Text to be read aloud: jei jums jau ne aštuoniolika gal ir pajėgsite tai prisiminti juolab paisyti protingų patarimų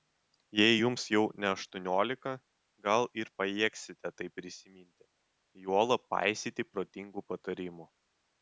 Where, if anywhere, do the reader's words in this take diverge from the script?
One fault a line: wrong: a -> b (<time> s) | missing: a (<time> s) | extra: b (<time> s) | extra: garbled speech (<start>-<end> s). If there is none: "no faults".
no faults